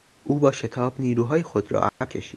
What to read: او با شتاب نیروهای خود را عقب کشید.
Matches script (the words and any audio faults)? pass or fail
fail